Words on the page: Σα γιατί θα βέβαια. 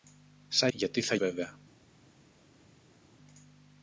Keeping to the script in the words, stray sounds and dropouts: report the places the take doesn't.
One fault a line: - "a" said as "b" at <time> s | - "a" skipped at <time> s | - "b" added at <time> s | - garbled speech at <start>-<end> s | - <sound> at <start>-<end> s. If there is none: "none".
none